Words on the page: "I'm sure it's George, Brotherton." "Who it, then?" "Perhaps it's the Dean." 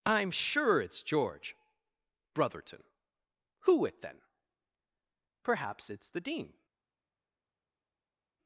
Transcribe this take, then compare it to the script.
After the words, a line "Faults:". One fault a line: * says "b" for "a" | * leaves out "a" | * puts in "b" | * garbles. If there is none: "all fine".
"I'm sure it's George, Brotherton." "Who it, then?" "Perhaps it's the Dean."
Faults:
all fine